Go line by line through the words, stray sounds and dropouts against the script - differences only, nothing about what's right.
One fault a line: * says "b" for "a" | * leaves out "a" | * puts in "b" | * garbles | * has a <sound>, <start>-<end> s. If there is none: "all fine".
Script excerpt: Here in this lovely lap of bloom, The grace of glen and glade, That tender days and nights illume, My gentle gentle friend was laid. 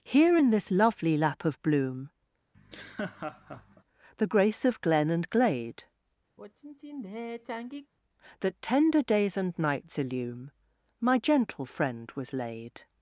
* has a laugh, 2.5-3.8 s
* has a sigh, 6.4-7.9 s
* leaves out "gentle"